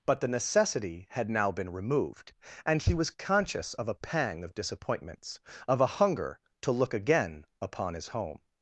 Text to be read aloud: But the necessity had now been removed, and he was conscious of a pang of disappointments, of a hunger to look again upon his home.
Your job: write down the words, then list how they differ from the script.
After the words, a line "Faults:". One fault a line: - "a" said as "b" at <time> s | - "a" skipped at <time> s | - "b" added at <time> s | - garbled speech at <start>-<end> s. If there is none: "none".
But the necessity had now been removed, and he was conscious of a pang of disappointments, of a hunger to look again upon his home.
Faults:
none